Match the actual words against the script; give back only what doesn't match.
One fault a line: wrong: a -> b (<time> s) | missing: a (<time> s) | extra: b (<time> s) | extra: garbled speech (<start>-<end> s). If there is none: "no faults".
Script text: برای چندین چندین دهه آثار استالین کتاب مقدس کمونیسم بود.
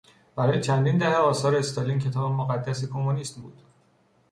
missing: چندین (1.0 s)